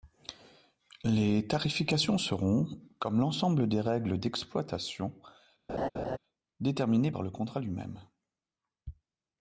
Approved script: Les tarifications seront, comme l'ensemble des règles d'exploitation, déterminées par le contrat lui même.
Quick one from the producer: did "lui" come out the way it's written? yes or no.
yes